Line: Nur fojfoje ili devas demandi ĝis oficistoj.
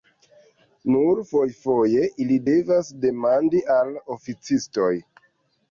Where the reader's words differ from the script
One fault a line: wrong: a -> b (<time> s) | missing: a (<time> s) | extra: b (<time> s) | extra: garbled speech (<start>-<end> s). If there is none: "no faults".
wrong: ĝis -> al (3.8 s)